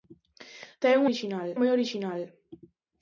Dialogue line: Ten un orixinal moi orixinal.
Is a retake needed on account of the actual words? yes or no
no